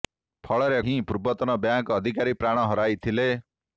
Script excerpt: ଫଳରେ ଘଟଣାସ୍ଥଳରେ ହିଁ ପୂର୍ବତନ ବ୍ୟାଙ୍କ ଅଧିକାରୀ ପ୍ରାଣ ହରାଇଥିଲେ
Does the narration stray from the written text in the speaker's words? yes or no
yes